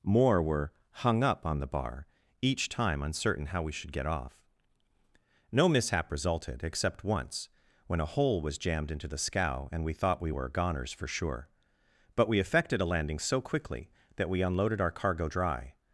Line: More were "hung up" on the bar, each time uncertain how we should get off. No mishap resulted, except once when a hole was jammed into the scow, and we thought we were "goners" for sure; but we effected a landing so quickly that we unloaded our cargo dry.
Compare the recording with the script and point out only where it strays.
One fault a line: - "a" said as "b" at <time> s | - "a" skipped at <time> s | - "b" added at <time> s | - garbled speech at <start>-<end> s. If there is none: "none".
none